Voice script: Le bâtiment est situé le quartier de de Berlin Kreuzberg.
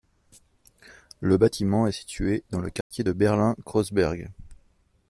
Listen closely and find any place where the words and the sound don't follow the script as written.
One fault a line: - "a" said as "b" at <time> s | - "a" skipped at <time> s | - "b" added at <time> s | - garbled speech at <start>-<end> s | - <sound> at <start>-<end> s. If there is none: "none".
- "dans" added at 2.5 s
- dropout at 2.8-2.9 s
- "de" skipped at 3.1 s